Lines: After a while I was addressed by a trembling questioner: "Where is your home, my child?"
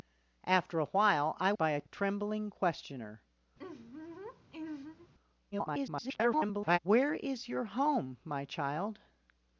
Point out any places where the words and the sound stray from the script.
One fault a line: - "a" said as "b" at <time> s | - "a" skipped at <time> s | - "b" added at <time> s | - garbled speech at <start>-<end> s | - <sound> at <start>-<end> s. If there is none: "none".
- "was addressed" skipped at 1.5 s
- laugh at 3.6-5.1 s
- garbled speech at 5.5-6.8 s